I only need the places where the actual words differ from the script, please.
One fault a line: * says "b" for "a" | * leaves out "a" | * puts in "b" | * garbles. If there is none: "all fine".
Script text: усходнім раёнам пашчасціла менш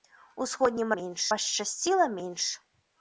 * says "менш" for "раёнам"